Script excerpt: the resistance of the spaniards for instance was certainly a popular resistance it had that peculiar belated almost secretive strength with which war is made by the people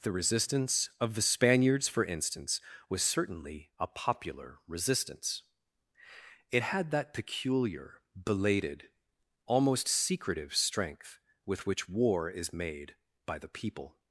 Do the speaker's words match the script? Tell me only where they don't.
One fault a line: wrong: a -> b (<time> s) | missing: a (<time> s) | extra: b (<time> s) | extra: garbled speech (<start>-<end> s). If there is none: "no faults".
no faults